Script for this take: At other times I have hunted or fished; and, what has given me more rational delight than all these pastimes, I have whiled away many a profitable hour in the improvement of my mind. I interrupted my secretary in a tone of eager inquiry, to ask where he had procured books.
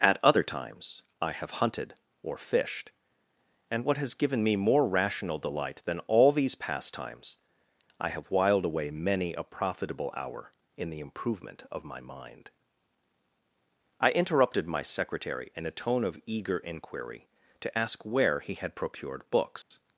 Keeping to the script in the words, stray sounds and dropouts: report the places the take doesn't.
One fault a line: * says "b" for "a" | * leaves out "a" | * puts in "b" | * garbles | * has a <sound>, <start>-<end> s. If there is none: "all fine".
* has a dropout, 19.6-19.7 s